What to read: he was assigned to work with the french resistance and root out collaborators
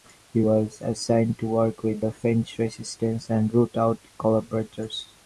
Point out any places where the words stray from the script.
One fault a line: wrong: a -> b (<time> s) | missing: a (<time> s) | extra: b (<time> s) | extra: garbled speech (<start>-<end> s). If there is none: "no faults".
no faults